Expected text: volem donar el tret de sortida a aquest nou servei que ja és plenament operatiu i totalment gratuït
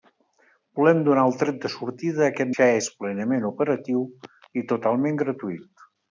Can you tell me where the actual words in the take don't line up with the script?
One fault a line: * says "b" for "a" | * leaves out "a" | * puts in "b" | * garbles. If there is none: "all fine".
* leaves out "nou servei que"